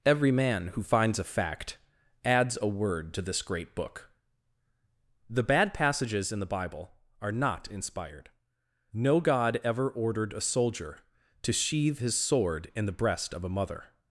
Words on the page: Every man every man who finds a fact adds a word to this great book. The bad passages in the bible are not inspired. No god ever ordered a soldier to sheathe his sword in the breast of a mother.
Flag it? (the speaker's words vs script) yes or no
yes